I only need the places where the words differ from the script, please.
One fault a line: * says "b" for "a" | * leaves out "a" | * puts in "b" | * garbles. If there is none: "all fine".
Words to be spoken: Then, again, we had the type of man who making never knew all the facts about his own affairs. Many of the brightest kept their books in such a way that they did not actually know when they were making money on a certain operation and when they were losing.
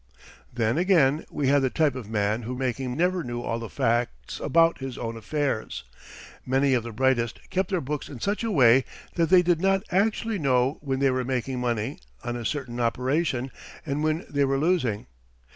all fine